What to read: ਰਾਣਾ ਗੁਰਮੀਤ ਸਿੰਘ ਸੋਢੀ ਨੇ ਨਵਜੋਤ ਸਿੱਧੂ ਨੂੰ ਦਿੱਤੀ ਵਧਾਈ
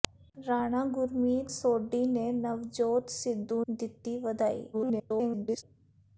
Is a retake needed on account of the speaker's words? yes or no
yes